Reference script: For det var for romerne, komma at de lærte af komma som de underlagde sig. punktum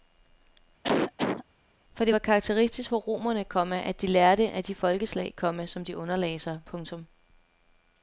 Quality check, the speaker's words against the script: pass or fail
fail